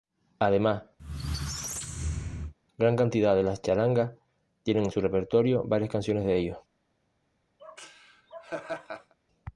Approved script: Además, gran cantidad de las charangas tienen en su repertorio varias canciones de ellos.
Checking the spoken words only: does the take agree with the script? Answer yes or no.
yes